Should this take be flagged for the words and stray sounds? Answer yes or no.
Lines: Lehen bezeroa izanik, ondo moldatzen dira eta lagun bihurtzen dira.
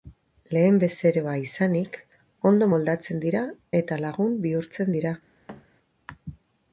yes